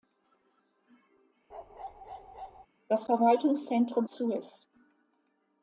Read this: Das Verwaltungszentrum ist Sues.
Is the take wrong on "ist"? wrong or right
wrong